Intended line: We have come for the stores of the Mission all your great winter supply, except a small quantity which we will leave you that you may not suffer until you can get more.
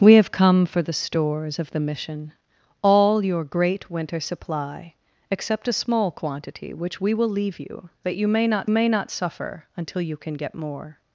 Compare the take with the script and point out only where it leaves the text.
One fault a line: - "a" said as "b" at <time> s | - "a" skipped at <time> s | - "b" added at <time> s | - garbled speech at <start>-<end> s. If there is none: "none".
- "may not" added at 8.7 s